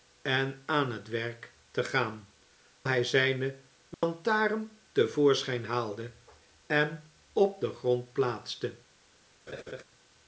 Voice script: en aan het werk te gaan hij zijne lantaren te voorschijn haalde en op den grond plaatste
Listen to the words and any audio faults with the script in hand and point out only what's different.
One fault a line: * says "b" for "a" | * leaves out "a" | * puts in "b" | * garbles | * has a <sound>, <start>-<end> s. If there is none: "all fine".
* has a dropout, 3.9-4.0 s
* has a laugh, 9.5-9.8 s